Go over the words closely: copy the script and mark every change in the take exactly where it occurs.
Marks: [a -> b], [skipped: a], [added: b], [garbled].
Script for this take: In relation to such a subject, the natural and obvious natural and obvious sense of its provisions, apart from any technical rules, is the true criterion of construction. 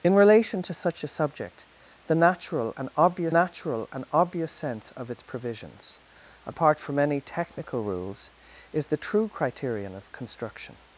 In relation to such a subject, the natural and obvious natural and obvious sense of its provisions, apart from any technical rules, is the true criterion of construction.